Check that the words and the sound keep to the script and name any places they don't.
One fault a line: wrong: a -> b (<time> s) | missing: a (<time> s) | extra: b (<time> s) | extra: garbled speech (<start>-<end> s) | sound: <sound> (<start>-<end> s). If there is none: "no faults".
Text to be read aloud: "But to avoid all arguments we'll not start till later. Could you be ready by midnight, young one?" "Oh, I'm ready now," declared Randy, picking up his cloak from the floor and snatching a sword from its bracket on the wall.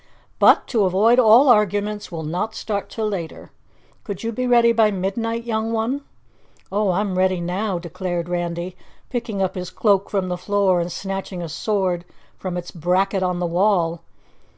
no faults